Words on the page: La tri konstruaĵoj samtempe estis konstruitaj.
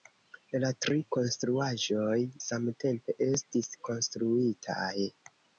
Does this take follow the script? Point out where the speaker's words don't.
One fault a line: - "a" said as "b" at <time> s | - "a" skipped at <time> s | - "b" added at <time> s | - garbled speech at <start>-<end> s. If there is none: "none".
none